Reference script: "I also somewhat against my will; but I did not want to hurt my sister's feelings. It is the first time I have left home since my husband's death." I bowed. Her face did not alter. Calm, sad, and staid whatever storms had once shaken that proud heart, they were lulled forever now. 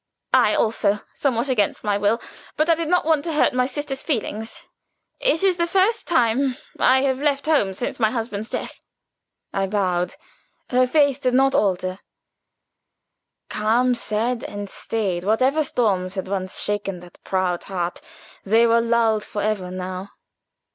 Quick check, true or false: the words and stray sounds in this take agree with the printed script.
true